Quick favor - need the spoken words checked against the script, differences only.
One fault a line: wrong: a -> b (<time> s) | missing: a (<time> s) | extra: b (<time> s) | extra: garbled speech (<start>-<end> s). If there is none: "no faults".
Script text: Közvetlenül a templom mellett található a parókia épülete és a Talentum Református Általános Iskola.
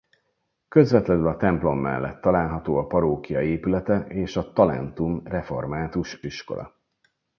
missing: Általános (6.2 s)